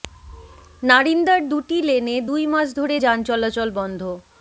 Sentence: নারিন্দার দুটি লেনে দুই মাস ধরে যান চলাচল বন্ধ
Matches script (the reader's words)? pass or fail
pass